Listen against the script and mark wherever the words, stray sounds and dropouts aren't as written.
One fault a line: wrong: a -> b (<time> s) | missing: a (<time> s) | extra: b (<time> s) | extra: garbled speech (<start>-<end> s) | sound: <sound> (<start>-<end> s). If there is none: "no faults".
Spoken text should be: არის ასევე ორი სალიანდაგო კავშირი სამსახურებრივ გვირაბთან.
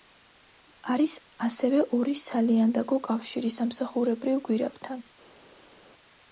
no faults